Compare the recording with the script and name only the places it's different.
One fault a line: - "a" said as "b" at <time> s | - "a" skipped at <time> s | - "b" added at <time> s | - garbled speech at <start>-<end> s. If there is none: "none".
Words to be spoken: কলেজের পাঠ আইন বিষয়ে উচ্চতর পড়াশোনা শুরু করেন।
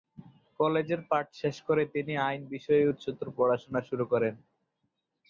- "শেষ করে তিনি" added at 1.4 s